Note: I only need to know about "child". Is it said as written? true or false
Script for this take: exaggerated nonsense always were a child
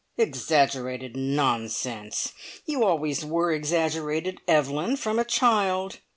true